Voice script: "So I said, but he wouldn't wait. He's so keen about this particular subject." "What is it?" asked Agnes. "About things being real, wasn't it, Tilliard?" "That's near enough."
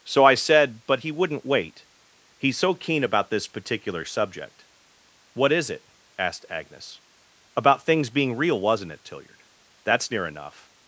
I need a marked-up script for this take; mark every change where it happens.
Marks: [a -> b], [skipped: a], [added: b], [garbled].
"So I said, but he wouldn't wait. He's so keen about this particular subject." "What is it?" asked Agnes. "About things being real, wasn't it, Tilliard?" "That's near enough."